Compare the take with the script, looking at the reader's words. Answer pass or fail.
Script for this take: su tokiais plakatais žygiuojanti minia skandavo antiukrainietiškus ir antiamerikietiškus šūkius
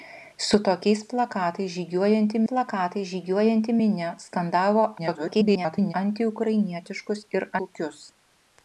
fail